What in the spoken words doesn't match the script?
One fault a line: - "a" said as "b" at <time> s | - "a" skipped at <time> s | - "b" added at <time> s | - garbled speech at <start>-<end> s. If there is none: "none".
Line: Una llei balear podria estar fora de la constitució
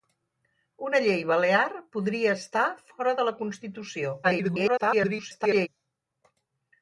- garbled speech at 4.2-5.7 s